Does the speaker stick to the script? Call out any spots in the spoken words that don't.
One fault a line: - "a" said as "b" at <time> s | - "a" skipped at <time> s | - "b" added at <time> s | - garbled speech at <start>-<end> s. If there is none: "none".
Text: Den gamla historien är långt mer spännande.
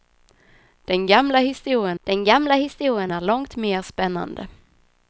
- "den gamla historien" added at 2.0 s